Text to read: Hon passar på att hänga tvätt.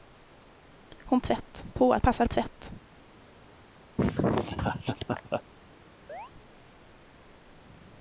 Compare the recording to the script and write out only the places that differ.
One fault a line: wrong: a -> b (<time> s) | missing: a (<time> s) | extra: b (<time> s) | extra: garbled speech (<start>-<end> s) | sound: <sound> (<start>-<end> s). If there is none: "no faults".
wrong: passar -> tvätt (1.2 s)
wrong: hänga -> passar (2.0 s)
sound: laugh (4.0-5.4 s)
sound: chirp (6.1-6.3 s)